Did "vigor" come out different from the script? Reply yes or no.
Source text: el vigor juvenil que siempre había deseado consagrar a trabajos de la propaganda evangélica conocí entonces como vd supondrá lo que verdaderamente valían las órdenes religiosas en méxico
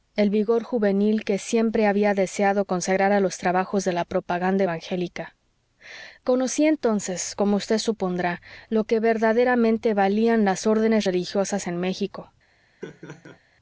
no